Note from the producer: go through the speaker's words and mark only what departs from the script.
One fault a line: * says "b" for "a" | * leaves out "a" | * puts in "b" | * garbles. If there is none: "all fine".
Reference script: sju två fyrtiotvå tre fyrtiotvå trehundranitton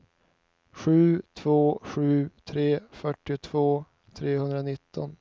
* says "sju" for "fyrtiotvå"